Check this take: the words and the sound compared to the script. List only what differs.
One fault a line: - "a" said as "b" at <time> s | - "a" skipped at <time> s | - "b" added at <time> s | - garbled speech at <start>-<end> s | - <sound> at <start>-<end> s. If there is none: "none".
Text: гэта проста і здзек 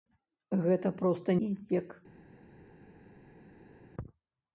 none